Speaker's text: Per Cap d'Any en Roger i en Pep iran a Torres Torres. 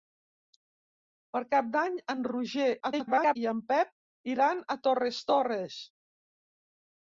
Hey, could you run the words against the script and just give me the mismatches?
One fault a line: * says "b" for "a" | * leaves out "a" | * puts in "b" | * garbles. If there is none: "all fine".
* garbles